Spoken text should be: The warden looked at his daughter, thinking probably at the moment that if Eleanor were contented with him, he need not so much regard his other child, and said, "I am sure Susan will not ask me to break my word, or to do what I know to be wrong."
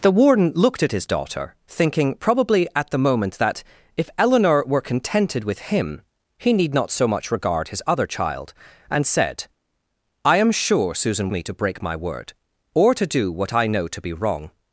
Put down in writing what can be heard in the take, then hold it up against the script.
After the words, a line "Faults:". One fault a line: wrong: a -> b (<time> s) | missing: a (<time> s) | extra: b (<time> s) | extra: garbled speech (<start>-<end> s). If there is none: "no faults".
The warden looked at his daughter, thinking probably at the moment that if Eleanor were contented with him, he need not so much regard his other child, and said, "I am sure Susan me to break my word, or to do what I know to be wrong."
Faults:
missing: will not ask (11.3 s)